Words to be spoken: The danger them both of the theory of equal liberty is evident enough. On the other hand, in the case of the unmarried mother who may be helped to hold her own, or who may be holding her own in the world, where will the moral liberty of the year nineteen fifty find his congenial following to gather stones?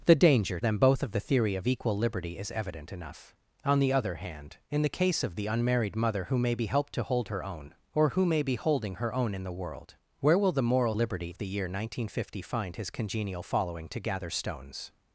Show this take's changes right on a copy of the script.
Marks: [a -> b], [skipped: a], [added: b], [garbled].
The danger them both of the theory of equal liberty is evident enough. On the other hand, in the case of the unmarried mother who may be helped to hold her own, or who may be holding her own in the world, where will the moral liberty of the year nineteen fifty find his congenial following to gather stones?